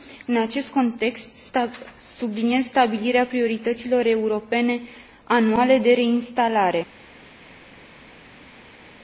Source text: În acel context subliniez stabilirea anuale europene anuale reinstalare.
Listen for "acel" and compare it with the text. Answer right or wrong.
wrong